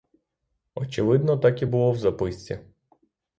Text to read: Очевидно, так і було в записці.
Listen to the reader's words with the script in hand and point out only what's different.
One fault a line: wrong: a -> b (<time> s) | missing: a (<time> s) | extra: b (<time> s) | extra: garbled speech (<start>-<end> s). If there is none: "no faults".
no faults